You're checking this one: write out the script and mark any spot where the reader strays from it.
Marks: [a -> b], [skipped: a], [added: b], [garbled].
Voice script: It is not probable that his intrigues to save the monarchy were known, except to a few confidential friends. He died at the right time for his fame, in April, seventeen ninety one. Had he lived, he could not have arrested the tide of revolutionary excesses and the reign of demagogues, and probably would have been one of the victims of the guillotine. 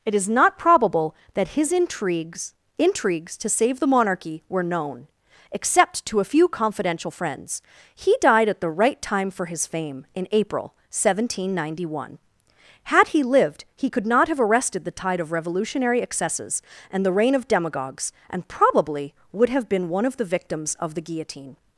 It is not probable that his intrigues [added: intrigues] to save the monarchy were known, except to a few confidential friends. He died at the right time for his fame, in April, seventeen ninety one. Had he lived, he could not have arrested the tide of revolutionary excesses and the reign of demagogues, and probably would have been one of the victims of the guillotine.